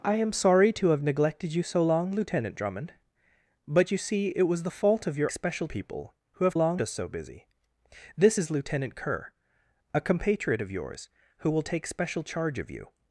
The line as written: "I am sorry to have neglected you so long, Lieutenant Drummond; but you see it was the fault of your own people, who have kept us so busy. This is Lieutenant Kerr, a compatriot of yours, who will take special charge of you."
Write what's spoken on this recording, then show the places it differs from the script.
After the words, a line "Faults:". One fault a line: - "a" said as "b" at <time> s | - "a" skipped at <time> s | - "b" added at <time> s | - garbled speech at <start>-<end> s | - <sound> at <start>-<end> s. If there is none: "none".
"I am sorry to have neglected you so long, Lieutenant Drummond; but you see it was the fault of your special people, who have long us so busy. This is Lieutenant Kerr, a compatriot of yours, who will take special charge of you."
Faults:
- "own" said as "special" at 5.3 s
- "kept" said as "long" at 6.5 s